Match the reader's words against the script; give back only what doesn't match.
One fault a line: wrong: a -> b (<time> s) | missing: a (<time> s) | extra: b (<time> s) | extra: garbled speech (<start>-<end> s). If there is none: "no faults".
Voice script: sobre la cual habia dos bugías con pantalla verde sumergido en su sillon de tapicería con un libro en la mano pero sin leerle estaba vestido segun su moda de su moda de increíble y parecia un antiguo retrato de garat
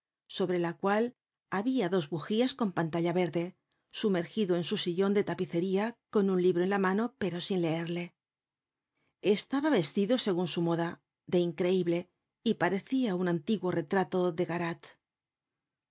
missing: su moda de (11.4 s)